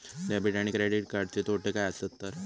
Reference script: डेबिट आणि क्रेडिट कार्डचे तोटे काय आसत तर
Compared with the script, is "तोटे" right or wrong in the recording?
right